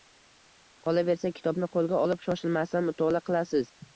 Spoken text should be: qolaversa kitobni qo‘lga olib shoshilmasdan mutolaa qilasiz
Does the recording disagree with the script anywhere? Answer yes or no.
no